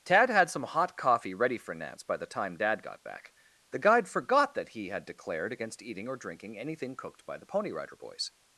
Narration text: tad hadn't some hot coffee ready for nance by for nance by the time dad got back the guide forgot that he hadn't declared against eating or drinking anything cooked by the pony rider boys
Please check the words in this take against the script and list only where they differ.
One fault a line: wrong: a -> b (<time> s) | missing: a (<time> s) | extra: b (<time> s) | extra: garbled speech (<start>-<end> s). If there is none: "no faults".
wrong: hadn't -> had (0.3 s)
missing: for nance by (2.2 s)
wrong: hadn't -> had (4.9 s)